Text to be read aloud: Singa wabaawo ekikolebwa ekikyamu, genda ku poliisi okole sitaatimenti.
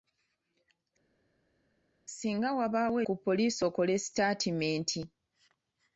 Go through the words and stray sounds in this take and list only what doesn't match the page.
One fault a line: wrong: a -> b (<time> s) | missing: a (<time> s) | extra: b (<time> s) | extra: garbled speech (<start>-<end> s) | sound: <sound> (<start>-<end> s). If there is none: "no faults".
missing: ekikolebwa ekikyamu genda (3.0 s)